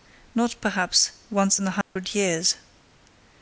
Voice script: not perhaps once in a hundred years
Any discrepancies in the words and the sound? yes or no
yes